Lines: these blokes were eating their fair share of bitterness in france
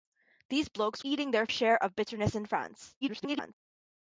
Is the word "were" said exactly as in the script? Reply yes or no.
no